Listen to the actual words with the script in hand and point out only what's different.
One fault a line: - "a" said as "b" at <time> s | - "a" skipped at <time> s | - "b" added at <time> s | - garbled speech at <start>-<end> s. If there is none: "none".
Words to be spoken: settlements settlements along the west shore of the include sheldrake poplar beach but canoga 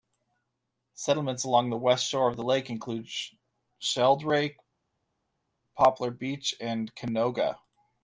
- "settlements" skipped at 1.4 s
- "lake" added at 2.4 s
- "but" said as "and" at 6.6 s